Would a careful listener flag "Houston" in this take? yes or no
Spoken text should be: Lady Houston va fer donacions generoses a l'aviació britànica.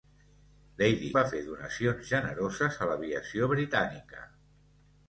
yes